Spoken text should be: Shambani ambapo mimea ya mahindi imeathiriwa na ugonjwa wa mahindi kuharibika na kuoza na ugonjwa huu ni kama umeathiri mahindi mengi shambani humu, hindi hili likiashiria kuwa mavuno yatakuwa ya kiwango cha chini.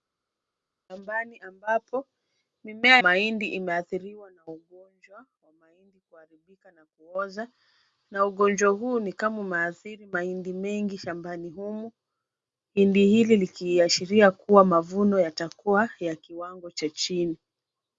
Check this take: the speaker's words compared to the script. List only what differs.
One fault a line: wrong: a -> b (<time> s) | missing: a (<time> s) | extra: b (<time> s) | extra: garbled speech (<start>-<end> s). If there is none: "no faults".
missing: ya (3.0 s)